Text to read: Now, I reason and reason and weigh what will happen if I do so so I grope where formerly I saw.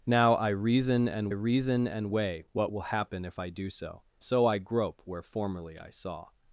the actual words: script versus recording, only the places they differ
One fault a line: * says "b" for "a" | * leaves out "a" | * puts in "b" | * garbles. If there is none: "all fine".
all fine